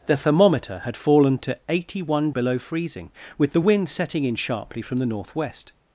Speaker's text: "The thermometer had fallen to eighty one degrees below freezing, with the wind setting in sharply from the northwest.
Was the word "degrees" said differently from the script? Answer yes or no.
yes